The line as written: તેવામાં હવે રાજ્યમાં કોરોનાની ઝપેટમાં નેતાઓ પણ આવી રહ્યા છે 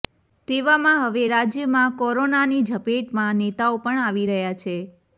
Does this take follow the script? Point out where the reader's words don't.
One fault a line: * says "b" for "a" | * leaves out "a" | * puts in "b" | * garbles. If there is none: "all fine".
all fine